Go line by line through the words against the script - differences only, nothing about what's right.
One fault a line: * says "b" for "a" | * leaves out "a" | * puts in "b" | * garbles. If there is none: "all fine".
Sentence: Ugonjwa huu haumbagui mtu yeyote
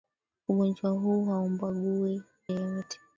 * leaves out "mtu"